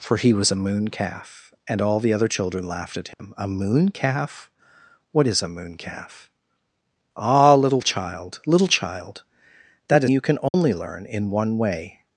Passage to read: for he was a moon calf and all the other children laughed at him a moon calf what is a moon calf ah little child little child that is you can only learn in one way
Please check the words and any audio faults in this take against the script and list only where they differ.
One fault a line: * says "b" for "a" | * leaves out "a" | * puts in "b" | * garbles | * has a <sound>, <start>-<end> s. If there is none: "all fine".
* has a dropout, 3.1-3.2 s
* has a dropout, 10.5-10.5 s